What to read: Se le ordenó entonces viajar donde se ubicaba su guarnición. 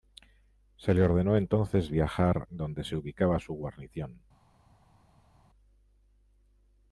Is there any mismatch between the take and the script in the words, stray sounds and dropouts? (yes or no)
no